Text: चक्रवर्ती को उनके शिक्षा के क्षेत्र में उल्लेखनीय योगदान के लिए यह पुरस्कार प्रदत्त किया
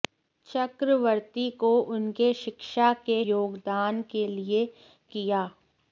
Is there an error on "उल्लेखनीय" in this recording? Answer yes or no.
yes